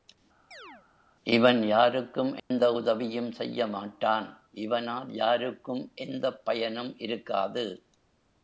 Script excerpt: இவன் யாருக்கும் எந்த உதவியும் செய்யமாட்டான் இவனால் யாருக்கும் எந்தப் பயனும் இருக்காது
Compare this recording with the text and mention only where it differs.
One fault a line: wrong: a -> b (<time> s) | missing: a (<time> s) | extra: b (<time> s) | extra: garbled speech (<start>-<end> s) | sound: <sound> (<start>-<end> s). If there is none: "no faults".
sound: chirp (0.5-0.9 s)
sound: dropout (2.4-2.5 s)